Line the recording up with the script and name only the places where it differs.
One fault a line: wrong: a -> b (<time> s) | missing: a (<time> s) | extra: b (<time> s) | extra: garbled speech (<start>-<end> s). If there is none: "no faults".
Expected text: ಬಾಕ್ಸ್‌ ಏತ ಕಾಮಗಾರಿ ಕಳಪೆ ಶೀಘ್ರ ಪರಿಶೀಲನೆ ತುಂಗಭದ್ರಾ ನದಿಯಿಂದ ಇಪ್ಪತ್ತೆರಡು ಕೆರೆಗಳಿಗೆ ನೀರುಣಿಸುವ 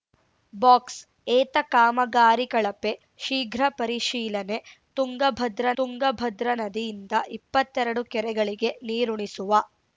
extra: ತುಂಗಭದ್ರಾ (5.8 s)